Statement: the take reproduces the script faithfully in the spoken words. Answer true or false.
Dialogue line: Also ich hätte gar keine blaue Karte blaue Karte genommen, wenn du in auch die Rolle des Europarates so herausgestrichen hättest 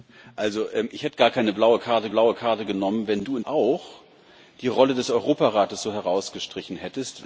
true